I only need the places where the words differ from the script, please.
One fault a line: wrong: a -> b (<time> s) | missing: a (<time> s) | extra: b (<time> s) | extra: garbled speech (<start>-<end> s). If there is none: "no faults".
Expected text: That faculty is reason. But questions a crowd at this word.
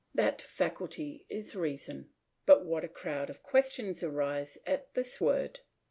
wrong: questions -> what (2.6 s)
extra: of questions arise (3.3 s)